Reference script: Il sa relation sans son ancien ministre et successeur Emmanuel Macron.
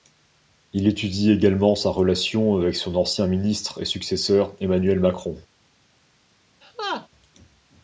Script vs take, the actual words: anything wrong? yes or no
yes